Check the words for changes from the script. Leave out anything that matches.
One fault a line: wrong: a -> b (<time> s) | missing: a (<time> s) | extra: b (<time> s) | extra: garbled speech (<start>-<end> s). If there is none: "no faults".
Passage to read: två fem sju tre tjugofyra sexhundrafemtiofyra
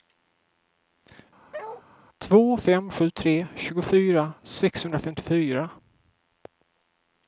no faults